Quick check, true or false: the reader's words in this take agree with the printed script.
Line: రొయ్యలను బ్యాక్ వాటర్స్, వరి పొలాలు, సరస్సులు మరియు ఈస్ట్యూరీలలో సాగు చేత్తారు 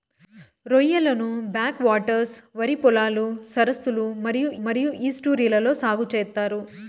false